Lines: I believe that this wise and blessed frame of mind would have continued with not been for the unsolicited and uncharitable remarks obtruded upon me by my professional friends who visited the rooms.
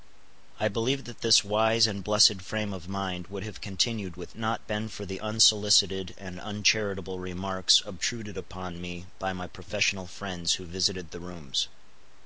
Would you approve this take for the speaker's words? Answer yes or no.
yes